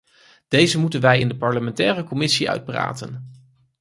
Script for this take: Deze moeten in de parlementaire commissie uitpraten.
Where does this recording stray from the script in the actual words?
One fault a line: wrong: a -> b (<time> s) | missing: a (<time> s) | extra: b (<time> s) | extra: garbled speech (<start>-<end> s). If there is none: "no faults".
extra: wij (1.0 s)